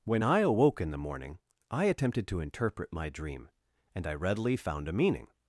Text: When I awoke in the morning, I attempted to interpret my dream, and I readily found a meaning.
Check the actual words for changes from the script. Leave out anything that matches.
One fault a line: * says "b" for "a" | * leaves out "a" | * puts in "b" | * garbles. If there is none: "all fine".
all fine